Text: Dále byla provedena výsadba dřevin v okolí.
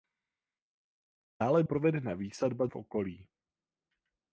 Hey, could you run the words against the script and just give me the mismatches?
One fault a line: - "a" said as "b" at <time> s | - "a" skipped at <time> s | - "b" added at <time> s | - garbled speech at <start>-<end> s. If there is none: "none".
- "byla" skipped at 1.6 s
- "dřevin" skipped at 2.7 s